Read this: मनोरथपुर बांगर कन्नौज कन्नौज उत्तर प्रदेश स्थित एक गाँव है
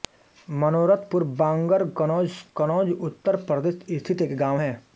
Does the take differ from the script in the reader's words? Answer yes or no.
no